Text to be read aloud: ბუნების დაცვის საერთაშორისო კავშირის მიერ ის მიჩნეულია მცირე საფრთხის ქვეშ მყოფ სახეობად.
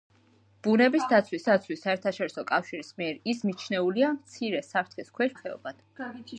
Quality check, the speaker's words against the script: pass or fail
fail